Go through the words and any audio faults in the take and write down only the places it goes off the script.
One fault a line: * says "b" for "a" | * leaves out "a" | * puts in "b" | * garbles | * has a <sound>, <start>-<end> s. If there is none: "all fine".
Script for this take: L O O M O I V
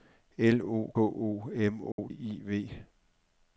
* has a dropout, 1.9-2.0 s